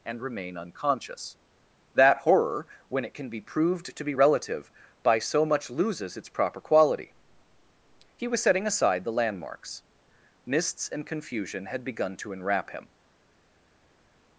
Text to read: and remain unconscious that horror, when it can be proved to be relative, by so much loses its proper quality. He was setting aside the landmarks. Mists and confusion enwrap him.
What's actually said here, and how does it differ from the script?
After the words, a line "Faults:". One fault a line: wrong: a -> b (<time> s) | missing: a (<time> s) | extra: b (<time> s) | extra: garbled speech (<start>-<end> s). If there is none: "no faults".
and remain unconscious that horror, when it can be proved to be relative, by so much loses its proper quality. He was setting aside the landmarks. Mists and confusion had begun to enwrap him.
Faults:
extra: had begun to (11.7 s)